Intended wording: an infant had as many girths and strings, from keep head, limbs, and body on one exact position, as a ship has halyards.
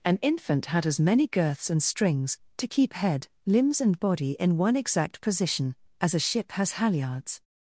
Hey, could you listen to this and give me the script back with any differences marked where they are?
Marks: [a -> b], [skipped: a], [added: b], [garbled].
an infant had as many girths and strings, [from -> to] keep head, limbs, and body [on -> in] one exact position, as a ship has halyards.